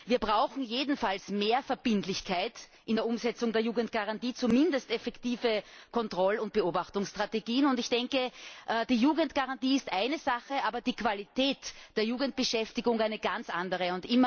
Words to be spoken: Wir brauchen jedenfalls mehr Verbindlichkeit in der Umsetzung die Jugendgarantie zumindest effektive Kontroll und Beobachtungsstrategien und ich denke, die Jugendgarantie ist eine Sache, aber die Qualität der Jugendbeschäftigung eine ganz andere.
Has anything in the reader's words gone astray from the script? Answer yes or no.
yes